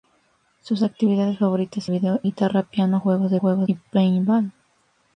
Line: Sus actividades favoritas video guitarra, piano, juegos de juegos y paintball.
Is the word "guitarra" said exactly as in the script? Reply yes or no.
yes